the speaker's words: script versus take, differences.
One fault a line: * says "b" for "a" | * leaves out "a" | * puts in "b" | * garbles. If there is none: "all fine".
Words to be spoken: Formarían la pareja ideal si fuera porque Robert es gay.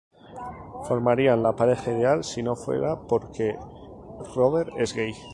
* puts in "no"